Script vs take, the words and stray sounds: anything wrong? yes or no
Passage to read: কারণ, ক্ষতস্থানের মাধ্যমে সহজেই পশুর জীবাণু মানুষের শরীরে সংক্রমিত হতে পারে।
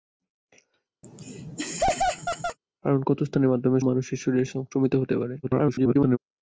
yes